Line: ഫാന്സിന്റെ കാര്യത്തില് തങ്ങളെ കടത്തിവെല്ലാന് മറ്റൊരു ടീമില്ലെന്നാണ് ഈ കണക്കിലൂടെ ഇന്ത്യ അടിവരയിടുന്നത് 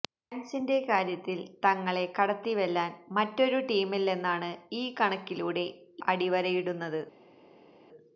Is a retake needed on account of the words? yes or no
yes